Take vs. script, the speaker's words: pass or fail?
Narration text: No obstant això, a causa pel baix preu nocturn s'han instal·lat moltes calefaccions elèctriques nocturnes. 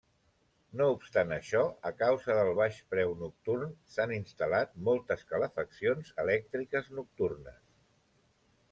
fail